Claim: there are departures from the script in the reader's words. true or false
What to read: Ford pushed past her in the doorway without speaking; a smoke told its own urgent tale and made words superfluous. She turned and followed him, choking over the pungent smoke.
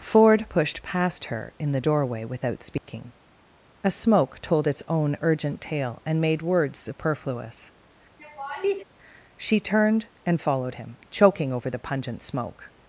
false